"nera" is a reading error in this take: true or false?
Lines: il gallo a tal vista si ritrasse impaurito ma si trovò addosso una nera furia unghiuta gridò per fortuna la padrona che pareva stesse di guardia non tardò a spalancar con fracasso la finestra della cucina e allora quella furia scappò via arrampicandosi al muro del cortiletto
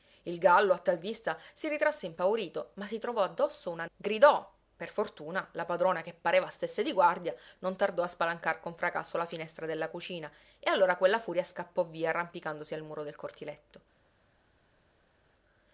true